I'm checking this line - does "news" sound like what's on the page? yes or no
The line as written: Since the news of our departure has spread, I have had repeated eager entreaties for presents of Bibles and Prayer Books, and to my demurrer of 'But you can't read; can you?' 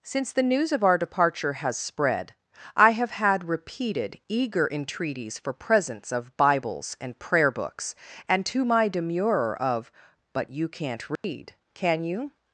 yes